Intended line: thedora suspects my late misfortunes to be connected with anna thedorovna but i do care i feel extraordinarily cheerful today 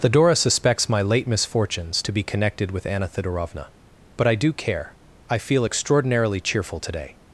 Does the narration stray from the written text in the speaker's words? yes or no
no